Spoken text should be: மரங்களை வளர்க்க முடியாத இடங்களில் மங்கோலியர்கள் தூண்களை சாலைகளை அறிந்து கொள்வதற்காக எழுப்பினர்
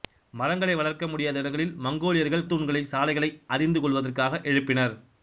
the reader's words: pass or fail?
pass